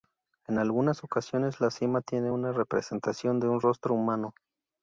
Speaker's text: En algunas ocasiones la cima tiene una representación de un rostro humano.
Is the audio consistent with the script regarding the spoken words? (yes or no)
yes